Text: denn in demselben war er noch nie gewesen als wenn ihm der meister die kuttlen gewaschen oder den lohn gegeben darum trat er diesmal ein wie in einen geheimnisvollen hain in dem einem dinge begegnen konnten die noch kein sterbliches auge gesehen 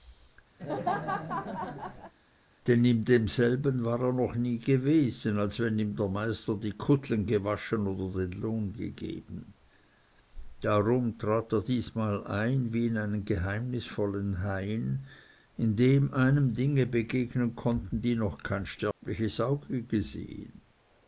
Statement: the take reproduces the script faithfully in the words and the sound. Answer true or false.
false